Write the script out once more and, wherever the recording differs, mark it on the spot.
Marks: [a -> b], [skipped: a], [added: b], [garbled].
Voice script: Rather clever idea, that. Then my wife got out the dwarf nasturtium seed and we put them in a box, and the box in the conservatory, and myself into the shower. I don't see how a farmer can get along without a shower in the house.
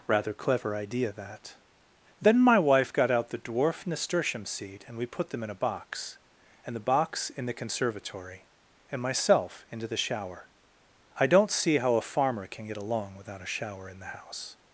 Rather clever idea, that. Then my wife got out the dwarf nasturtium seed and we put them in a box, and the box in the conservatory, and myself into the shower. I don't see how a farmer can get along without a shower in the house.